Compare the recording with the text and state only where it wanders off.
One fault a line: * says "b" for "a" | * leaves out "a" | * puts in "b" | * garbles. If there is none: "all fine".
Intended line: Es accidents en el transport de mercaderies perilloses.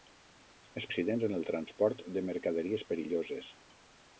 all fine